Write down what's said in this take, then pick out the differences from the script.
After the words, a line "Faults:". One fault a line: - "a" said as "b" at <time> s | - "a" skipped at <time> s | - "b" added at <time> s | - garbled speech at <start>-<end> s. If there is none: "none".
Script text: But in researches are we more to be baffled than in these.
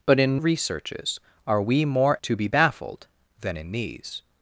But in researches are we more to be baffled than in these.
Faults:
none